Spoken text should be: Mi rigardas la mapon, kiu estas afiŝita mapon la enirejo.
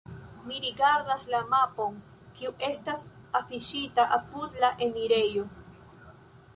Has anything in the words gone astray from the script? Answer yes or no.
yes